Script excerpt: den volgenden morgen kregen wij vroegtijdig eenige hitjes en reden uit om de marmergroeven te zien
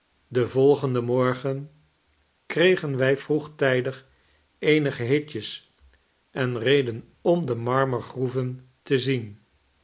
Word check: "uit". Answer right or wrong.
wrong